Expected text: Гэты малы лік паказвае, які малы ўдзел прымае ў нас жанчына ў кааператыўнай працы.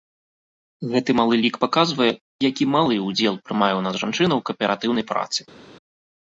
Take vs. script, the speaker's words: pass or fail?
pass